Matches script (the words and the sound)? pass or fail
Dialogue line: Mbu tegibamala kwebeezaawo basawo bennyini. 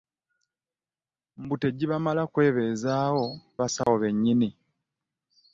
fail